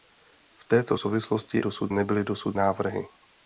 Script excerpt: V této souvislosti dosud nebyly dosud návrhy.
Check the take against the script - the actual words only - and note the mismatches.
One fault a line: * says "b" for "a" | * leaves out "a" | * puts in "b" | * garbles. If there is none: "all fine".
all fine